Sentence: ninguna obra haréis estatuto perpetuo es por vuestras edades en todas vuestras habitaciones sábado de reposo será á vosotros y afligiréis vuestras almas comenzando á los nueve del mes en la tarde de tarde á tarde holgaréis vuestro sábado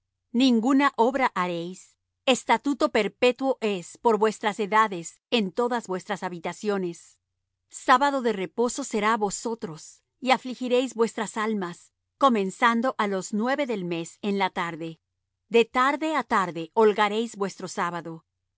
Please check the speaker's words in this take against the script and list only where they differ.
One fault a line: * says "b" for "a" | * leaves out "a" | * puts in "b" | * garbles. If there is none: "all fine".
all fine